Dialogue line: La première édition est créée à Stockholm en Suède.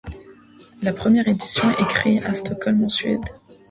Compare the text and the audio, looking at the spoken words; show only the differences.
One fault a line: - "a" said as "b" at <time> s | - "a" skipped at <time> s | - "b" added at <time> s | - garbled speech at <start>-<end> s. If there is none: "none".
none